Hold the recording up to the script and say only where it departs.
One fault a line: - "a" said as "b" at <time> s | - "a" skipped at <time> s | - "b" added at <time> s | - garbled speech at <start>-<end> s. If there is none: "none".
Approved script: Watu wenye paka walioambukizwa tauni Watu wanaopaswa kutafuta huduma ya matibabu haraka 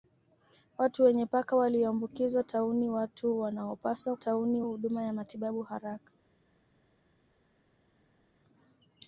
- "kutafuta" said as "tauni" at 4.2 s